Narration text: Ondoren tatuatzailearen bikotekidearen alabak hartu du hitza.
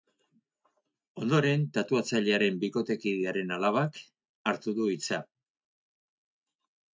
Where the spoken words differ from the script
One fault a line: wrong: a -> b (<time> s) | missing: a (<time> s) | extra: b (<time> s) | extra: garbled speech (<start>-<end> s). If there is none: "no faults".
no faults